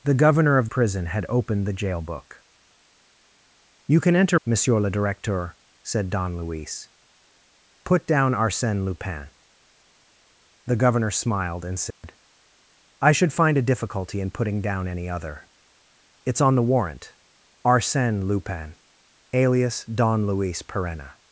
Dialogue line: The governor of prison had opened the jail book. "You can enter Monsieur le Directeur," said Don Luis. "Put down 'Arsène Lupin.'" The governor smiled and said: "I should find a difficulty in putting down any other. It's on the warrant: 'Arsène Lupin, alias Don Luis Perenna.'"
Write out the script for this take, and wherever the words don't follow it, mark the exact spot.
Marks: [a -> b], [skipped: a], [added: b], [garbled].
The governor of prison had opened the jail book. "You can enter Monsieur le Directeur," said Don Luis. "Put down 'Arsène Lupin.'" The governor smiled and said: "I should find a difficulty in putting down any other. It's on the warrant: 'Arsène Lupin, alias Don Luis Perenna.'"